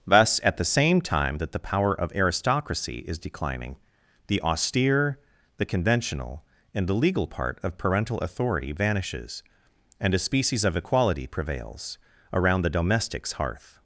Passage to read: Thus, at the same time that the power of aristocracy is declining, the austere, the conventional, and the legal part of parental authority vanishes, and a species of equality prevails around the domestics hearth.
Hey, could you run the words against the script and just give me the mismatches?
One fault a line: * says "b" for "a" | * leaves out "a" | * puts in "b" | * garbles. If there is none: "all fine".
all fine